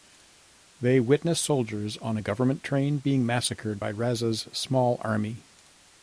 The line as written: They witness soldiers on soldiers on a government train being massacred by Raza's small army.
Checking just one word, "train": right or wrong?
right